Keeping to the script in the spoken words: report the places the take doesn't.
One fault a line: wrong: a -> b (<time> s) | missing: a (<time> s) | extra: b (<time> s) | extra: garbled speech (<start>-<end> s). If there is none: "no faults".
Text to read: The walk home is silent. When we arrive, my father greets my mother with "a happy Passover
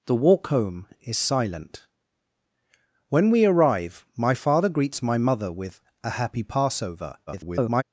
extra: garbled speech (7.3-7.8 s)